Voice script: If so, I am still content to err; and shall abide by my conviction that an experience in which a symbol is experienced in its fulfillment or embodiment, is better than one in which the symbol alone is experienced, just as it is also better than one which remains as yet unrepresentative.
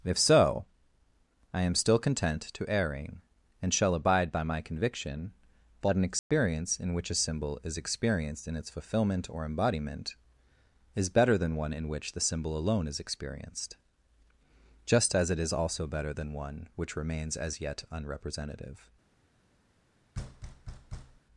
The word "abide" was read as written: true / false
true